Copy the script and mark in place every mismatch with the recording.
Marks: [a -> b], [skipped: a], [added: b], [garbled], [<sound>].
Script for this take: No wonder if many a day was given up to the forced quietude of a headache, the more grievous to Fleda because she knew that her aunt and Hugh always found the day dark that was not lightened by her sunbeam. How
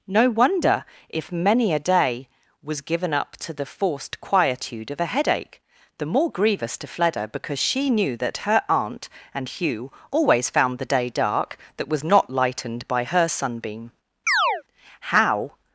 No wonder if many a day was given up to the forced quietude of a headache, the more grievous to Fleda because she knew that her aunt and Hugh always found the day dark that was not lightened by her sunbeam. [chirp] How